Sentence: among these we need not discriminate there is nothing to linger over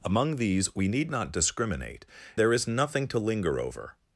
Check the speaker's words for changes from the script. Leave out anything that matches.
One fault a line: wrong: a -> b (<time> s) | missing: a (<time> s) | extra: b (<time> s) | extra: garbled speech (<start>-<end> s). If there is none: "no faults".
no faults